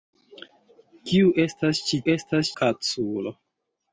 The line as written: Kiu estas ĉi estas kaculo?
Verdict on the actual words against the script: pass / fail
pass